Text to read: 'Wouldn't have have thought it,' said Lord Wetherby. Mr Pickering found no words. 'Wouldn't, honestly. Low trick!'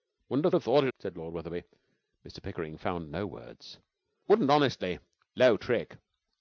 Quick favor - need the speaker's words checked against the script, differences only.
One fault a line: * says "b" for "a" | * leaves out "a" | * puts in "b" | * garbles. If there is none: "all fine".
all fine